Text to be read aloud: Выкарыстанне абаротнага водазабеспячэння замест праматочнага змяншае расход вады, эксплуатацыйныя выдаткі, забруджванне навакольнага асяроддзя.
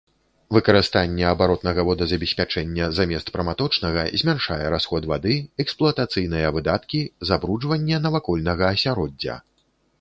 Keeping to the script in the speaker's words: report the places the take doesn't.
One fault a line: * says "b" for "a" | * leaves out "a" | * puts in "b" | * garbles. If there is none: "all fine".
all fine